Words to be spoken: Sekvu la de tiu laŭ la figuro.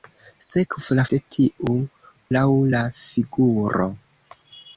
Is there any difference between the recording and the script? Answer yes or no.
no